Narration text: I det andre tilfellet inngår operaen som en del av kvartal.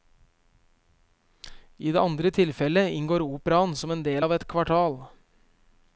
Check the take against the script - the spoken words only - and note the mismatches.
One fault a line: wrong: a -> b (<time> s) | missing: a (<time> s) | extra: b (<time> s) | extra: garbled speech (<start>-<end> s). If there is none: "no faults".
extra: et (4.4 s)